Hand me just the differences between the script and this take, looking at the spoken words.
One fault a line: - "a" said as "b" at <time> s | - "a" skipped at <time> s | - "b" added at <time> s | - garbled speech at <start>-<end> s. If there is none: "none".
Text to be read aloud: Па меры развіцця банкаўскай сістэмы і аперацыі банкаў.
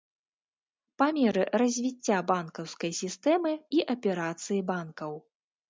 none